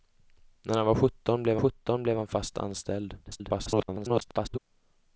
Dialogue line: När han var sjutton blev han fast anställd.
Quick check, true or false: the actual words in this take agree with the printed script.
false